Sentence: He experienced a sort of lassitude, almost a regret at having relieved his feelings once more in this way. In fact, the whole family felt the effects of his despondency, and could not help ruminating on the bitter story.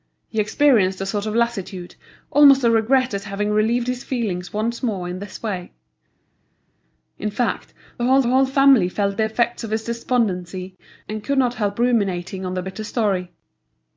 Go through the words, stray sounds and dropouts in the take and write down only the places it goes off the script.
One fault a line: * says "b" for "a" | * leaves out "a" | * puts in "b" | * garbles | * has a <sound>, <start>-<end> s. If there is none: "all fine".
* puts in "whole"